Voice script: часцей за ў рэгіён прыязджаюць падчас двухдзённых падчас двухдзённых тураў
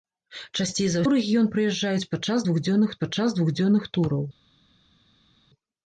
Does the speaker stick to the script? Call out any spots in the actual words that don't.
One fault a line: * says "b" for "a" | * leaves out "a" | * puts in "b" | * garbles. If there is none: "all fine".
all fine